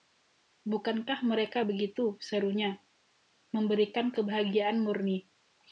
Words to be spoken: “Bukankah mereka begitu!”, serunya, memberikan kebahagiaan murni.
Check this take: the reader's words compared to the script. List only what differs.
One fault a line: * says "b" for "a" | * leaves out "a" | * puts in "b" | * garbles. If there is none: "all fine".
all fine